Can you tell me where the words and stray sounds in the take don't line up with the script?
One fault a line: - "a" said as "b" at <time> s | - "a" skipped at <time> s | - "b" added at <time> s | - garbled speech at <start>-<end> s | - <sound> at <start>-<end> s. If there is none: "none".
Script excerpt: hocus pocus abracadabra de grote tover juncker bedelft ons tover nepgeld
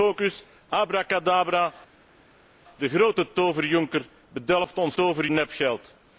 none